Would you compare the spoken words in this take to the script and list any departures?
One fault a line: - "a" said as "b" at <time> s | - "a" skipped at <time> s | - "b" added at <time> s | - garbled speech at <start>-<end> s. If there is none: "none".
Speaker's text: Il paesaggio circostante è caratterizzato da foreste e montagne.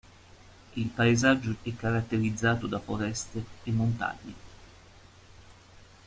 - "circostante" skipped at 1.6 s